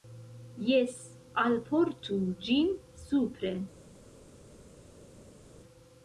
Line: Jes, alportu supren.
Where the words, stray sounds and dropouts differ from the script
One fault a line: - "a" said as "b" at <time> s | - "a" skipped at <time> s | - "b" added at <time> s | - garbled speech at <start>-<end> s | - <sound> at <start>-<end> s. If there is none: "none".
- "ĝin" added at 2.5 s